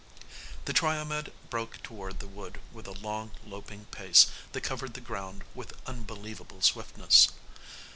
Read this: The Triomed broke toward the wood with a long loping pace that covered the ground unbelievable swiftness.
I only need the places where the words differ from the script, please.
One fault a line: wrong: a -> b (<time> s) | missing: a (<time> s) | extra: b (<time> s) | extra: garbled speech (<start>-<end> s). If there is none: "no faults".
extra: with (5.5 s)